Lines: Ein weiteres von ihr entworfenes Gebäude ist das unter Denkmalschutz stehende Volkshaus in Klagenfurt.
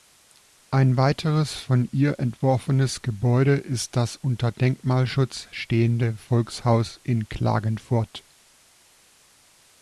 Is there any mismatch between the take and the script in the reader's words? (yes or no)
no